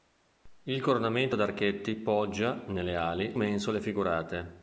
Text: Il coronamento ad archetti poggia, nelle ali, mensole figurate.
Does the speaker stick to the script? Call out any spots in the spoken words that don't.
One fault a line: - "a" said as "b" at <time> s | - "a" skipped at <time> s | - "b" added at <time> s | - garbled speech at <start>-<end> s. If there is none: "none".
none